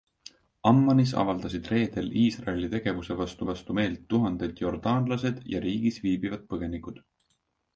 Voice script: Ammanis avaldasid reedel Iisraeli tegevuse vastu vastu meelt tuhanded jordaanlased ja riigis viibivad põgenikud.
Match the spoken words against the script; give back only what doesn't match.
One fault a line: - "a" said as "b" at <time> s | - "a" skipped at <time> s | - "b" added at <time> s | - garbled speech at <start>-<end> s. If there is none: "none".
none